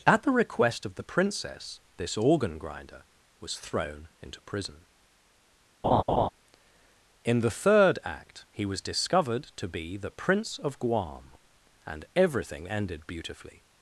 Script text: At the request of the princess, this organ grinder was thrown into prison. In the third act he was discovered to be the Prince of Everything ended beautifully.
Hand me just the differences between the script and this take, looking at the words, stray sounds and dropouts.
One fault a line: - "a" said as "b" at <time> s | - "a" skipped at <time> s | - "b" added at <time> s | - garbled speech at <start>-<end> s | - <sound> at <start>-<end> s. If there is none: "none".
- laugh at 5.8-6.3 s
- "Guam and" added at 10.8 s